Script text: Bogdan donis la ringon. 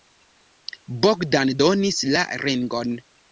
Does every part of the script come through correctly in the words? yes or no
yes